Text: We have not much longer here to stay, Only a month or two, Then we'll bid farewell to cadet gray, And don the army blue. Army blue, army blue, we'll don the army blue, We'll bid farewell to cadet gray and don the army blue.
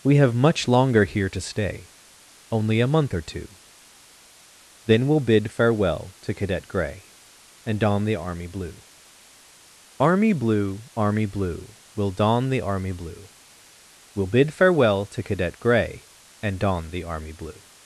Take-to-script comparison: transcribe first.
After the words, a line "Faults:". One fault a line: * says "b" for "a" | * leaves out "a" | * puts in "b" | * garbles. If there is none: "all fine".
We have much longer here to stay, Only a month or two, Then we'll bid farewell to cadet gray, And don the army blue. Army blue, army blue, we'll don the army blue, We'll bid farewell to cadet gray and don the army blue.
Faults:
* leaves out "not"